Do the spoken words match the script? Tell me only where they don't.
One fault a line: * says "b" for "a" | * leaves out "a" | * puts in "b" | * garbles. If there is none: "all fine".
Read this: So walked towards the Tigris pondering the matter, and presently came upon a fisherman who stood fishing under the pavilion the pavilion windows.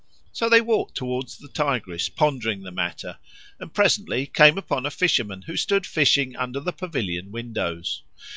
* puts in "they"
* leaves out "the pavilion"